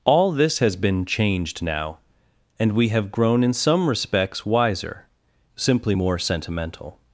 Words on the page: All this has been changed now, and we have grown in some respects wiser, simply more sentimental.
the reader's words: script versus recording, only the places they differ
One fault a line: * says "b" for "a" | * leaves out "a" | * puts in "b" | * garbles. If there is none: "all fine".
all fine